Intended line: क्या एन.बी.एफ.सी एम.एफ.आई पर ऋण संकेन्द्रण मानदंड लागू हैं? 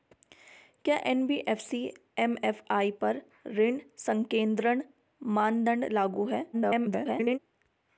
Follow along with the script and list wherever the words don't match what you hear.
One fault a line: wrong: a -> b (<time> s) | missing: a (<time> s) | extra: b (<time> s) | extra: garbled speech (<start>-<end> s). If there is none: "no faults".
extra: garbled speech (6.5-7.4 s)